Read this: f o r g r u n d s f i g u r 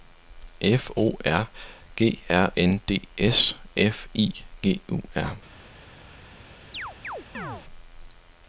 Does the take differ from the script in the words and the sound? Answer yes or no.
yes